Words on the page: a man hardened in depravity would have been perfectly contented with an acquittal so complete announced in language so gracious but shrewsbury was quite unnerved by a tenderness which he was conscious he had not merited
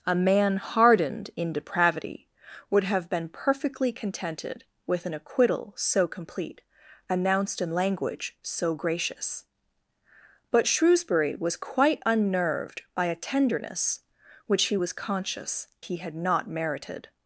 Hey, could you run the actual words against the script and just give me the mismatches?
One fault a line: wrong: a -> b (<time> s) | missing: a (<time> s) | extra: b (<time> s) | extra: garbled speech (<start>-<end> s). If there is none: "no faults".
no faults